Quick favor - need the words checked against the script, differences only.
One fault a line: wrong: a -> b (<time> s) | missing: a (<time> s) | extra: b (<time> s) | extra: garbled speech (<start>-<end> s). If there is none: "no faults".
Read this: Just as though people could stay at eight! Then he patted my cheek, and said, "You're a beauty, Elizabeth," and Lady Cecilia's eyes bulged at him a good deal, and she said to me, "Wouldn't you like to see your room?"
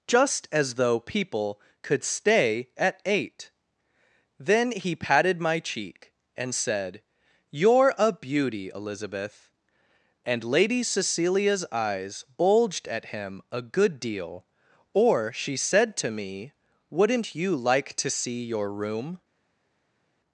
wrong: and -> or (14.9 s)